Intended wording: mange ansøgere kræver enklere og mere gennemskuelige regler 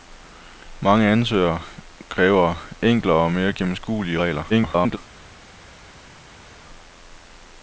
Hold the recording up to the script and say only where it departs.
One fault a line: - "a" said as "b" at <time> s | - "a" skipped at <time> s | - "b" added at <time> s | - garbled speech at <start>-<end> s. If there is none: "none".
- garbled speech at 4.5-5.0 s